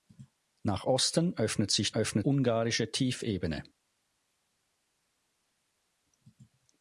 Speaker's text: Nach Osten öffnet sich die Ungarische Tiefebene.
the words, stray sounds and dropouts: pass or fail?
fail